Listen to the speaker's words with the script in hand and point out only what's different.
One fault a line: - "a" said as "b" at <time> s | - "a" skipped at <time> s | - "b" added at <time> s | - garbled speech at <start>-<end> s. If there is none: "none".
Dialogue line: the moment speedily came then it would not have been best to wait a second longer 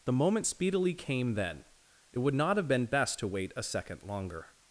none